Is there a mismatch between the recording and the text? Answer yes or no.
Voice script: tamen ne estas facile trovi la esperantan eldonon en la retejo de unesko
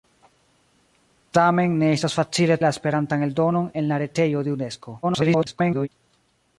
yes